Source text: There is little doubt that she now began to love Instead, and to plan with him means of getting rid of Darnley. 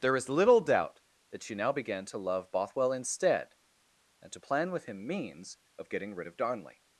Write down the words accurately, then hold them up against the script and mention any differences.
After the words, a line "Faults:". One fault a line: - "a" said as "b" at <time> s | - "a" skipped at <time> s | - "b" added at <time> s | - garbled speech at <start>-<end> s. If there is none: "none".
There is little doubt that she now began to love Bothwell instead, and to plan with him means of getting rid of Darnley.
Faults:
- "Bothwell" added at 2.5 s